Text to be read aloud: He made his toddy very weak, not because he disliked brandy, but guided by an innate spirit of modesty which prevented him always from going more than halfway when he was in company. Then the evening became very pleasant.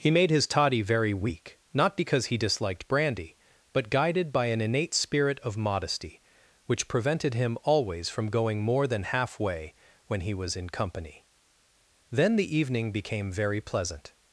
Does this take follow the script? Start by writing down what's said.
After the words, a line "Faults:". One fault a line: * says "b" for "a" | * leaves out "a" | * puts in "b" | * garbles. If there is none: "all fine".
He made his toddy very weak, not because he disliked brandy, but guided by an innate spirit of modesty which prevented him always from going more than halfway when he was in company. Then the evening became very pleasant.
Faults:
all fine